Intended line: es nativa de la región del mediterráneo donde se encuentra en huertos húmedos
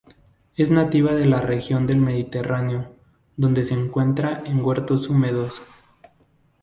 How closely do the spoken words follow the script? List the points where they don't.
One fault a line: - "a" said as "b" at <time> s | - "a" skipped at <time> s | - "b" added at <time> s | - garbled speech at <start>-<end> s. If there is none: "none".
none